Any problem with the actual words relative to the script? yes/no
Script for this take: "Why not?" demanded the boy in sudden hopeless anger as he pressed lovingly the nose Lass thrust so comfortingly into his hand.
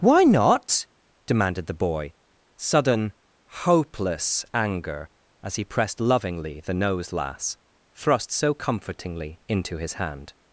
yes